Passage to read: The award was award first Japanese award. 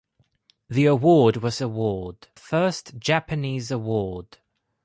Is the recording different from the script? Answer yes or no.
no